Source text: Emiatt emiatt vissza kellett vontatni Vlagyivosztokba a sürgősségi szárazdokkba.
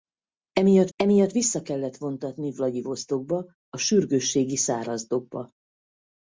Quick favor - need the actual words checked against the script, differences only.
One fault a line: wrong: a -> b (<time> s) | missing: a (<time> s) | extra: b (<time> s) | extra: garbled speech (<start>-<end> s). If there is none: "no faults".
no faults